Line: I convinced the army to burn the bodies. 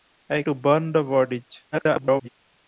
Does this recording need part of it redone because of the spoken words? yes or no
yes